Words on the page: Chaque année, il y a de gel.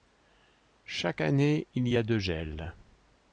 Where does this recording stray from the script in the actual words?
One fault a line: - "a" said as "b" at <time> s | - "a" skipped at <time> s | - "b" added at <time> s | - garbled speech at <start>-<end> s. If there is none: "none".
none